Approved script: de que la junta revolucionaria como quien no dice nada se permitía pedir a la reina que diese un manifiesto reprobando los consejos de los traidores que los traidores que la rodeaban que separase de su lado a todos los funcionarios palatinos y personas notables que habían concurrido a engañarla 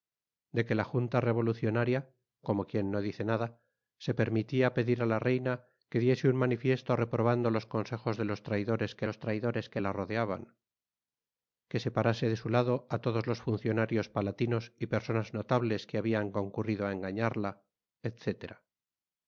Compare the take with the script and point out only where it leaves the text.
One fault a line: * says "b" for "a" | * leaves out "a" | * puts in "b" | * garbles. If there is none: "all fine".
all fine